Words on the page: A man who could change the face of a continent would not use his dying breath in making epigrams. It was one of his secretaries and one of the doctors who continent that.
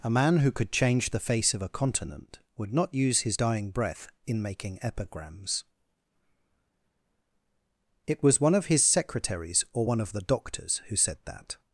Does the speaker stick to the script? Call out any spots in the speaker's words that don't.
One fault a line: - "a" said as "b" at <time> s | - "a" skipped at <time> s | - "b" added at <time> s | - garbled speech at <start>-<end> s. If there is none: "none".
- "and" said as "or" at 9.7 s
- "continent" said as "said" at 11.0 s